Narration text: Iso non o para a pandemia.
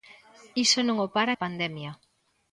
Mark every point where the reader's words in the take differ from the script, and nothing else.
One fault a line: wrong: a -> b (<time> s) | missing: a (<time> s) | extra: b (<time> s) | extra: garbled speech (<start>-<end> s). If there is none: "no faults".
no faults